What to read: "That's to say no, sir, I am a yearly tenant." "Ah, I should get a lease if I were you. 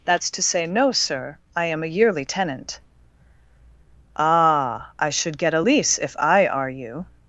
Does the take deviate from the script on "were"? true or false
true